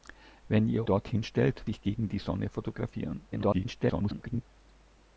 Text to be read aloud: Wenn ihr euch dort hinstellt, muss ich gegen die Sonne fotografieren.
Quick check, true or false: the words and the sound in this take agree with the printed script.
false